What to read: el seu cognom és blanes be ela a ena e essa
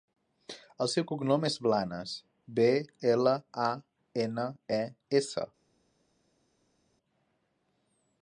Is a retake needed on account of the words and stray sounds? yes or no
no